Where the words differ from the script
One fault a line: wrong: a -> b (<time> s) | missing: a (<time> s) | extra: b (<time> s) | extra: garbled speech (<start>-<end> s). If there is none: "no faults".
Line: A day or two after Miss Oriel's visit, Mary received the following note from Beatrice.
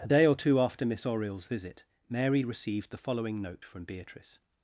no faults